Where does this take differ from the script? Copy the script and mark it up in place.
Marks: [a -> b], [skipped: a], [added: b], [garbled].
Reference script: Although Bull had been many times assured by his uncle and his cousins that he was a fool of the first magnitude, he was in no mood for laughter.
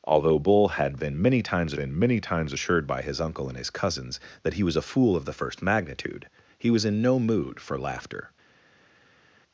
Although Bull had been many times [added: been many times] assured by his uncle and his cousins that he was a fool of the first magnitude, he was in no mood for laughter.